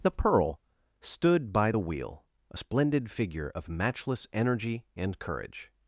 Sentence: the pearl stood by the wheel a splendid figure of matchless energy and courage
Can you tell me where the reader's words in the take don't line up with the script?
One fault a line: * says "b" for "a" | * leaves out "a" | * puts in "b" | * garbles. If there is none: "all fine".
all fine